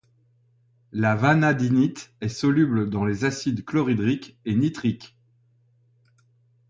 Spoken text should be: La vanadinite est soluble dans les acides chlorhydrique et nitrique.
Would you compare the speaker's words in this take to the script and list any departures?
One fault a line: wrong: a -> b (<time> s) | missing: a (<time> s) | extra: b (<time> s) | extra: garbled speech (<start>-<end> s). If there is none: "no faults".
no faults